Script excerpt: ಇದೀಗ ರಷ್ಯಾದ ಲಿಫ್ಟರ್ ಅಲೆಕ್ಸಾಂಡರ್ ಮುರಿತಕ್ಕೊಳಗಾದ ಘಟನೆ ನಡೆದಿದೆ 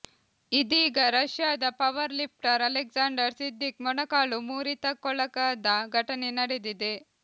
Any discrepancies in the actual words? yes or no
yes